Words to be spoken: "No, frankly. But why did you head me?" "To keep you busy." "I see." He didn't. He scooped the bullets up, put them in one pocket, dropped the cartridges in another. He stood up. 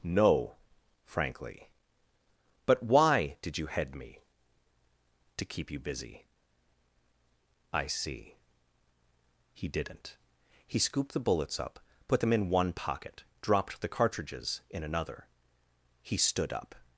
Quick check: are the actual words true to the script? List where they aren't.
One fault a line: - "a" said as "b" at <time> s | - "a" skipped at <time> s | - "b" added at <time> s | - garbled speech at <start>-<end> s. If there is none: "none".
none